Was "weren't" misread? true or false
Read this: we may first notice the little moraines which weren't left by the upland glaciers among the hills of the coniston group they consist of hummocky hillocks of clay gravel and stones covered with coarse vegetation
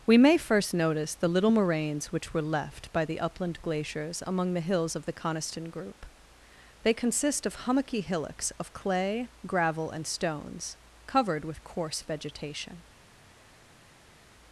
true